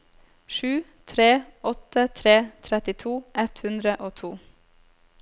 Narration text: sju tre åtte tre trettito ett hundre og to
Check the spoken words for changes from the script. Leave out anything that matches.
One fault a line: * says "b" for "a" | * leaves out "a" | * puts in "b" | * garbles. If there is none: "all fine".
all fine